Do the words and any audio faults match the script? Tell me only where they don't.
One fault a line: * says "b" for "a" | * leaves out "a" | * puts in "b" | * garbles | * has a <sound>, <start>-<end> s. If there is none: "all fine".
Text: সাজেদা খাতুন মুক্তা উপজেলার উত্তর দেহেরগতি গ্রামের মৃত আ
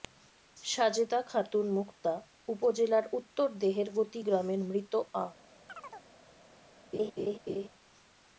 * has a chirp, 5.7-6.1 s
* has a laugh, 6.9-7.7 s